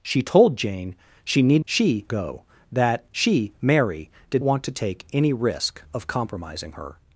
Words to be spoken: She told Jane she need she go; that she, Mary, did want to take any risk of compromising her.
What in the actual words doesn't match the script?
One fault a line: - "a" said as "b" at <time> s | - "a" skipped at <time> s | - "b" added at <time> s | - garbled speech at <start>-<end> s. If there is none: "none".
none